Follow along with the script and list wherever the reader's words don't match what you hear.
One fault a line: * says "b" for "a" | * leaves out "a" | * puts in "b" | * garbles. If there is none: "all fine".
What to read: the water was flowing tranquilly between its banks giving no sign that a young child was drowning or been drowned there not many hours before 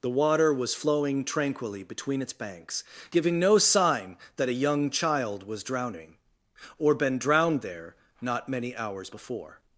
all fine